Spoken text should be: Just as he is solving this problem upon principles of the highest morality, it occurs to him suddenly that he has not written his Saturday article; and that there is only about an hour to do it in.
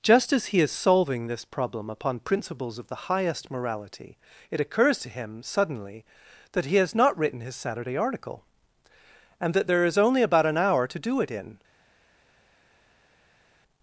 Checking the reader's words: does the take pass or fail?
pass